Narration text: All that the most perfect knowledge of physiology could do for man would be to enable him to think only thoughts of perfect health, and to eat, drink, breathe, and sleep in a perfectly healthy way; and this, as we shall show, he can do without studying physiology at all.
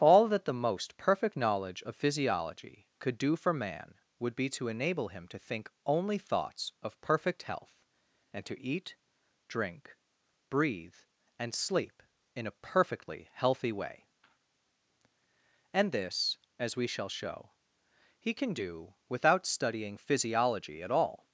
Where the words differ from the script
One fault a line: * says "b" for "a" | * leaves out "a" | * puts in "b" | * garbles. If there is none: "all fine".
all fine